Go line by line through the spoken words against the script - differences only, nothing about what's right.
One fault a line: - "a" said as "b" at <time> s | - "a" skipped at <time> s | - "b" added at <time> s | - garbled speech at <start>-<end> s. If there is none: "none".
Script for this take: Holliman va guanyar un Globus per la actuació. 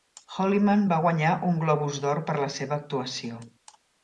- "d'Or" added at 2.1 s
- "seva" added at 2.6 s